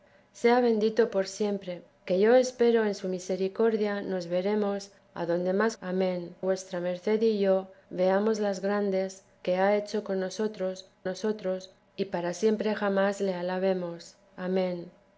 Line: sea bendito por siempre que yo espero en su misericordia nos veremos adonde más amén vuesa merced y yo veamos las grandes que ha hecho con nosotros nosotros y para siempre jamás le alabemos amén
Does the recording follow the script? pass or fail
pass